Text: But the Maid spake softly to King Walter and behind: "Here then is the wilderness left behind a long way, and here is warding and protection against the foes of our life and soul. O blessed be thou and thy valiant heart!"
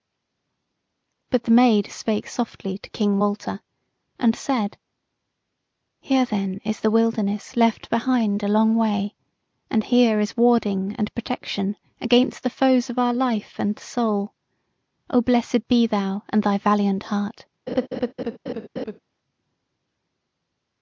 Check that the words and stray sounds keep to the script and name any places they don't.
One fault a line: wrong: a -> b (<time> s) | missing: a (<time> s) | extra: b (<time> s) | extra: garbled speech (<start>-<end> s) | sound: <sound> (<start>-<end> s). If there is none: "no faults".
wrong: behind -> said (4.4 s)
sound: laugh (17.7-19.0 s)